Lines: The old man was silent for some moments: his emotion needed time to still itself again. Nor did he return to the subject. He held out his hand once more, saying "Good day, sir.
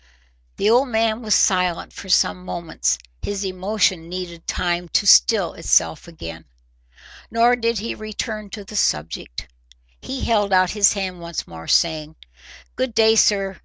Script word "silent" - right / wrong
right